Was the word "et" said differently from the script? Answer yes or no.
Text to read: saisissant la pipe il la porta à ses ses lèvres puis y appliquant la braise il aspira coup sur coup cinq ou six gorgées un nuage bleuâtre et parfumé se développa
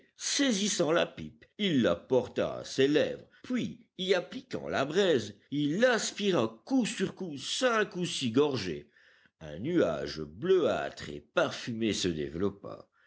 no